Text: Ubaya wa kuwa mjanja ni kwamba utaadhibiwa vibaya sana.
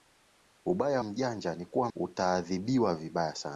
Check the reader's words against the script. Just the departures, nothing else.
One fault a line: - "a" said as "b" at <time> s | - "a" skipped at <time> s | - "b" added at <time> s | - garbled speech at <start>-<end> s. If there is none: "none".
- "wa kuwa" skipped at 1.0 s
- "kwamba" said as "kuwa" at 1.6 s